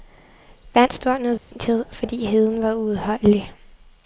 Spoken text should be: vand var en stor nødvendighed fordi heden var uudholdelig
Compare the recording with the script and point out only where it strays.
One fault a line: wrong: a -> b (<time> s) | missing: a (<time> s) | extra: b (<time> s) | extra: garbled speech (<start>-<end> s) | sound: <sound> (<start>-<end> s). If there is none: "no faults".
missing: var en (0.9 s)
sound: dropout (1.4-1.5 s)